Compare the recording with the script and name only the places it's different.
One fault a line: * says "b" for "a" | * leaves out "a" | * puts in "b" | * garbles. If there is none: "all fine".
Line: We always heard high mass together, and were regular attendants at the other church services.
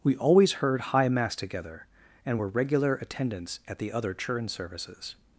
* says "churn" for "church"